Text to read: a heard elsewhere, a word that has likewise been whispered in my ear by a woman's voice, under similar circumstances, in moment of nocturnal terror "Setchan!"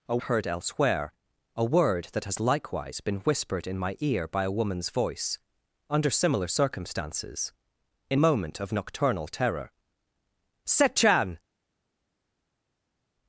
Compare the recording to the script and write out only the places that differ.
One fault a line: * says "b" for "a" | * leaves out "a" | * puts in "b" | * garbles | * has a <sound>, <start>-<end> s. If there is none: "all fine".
all fine